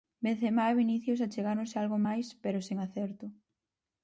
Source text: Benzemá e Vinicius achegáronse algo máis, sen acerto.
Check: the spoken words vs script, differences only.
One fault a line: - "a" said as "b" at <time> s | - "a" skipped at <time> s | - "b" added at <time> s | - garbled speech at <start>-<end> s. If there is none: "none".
- "pero" added at 2.4 s